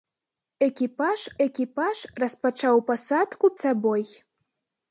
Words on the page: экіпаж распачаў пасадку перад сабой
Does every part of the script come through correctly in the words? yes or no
no